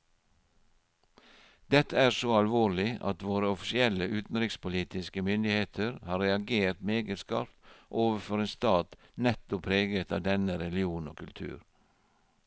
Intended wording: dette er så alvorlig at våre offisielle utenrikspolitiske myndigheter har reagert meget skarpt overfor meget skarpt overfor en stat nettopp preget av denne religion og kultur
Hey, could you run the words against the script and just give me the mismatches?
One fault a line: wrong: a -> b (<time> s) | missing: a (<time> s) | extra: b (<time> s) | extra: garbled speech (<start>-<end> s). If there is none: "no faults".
missing: meget skarpt overfor (8.4 s)